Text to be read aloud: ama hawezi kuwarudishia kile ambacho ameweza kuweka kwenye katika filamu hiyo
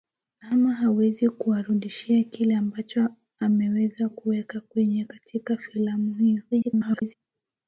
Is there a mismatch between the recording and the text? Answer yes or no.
yes